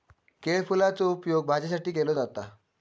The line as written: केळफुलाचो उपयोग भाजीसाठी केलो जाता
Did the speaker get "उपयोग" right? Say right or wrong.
right